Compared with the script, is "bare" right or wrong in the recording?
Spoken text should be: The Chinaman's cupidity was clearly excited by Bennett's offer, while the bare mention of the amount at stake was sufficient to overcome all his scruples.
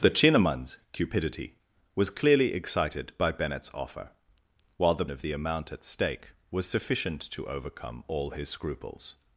wrong